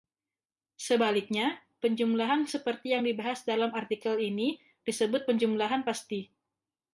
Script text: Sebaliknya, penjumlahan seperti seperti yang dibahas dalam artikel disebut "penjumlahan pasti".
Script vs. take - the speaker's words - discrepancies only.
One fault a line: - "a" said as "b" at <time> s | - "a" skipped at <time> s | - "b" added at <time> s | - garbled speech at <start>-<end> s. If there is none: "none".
- "seperti" skipped at 3.0 s
- "ini" added at 4.2 s